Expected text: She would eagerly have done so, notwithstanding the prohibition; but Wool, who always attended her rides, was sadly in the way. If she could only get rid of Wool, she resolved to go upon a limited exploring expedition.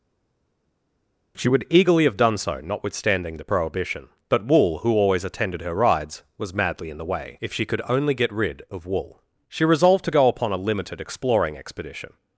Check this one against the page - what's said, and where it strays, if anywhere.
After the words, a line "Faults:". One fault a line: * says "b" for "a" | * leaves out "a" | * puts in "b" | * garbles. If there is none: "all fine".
She would eagerly have done so, notwithstanding the prohibition; but Wool, who always attended her rides, was madly in the way. If she could only get rid of Wool, she resolved to go upon a limited exploring expedition.
Faults:
* says "madly" for "sadly"